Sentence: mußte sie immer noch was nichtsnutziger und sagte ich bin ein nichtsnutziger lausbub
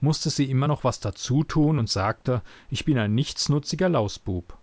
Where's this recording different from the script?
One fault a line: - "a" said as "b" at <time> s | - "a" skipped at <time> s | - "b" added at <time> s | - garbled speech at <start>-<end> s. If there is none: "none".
- "nichtsnutziger" said as "dazutun" at 1.0 s